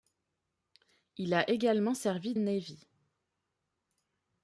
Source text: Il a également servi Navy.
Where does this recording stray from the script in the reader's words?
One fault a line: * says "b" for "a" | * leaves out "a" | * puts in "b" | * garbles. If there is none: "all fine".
all fine